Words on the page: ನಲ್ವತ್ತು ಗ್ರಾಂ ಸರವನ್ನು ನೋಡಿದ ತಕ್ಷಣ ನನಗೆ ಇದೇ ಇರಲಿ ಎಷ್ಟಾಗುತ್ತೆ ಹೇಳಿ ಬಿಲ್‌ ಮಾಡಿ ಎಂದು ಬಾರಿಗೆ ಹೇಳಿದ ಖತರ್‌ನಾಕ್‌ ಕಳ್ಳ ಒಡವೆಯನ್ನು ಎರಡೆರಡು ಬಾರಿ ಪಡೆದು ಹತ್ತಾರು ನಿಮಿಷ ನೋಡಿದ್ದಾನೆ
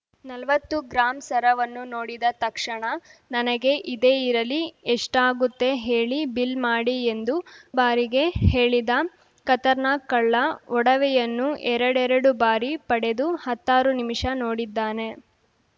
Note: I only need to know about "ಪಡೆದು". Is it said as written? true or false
true